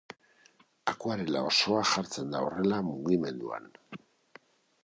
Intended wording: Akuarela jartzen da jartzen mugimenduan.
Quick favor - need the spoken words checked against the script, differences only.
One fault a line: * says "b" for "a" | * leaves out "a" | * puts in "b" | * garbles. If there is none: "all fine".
* puts in "osoa"
* says "horrela" for "jartzen"